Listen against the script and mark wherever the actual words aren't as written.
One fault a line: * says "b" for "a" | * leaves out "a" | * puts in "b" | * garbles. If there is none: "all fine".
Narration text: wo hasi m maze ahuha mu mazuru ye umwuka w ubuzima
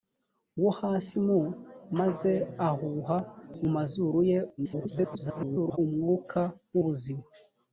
* garbles